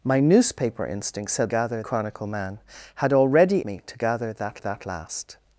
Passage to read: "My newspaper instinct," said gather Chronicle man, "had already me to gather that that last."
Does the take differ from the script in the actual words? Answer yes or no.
no